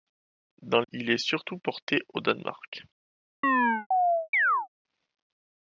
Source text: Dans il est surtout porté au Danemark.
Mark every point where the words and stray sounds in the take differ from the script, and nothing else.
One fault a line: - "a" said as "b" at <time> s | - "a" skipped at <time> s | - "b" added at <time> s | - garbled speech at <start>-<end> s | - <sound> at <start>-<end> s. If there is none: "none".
- chirp at 3.4-4.7 s